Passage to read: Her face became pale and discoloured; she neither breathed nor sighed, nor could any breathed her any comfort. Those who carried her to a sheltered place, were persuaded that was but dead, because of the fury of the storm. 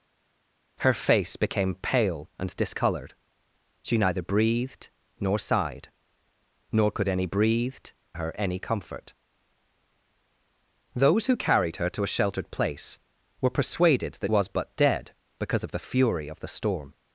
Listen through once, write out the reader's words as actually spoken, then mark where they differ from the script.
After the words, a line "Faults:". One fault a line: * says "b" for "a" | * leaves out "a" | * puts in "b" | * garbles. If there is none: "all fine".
Her face became pale and discoloured; she neither breathed nor sighed, nor could any breathed her any comfort. Those who carried her to a sheltered place, were persuaded that was but dead, because of the fury of the storm.
Faults:
all fine